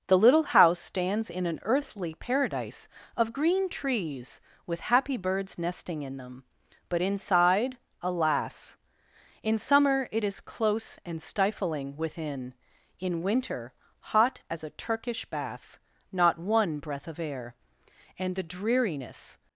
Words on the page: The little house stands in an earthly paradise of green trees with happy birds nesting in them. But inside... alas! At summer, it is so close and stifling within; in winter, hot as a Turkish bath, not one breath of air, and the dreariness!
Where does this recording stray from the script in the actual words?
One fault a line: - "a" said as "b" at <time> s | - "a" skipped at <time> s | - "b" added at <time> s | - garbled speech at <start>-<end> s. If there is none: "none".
- "At" said as "In" at 9.4 s
- "so" skipped at 10.4 s